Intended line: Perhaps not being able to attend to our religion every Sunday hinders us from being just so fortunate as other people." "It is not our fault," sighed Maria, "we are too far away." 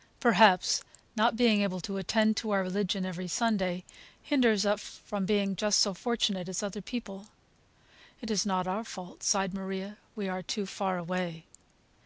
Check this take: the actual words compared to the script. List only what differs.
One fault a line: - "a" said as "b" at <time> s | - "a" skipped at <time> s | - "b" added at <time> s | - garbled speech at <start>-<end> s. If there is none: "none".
none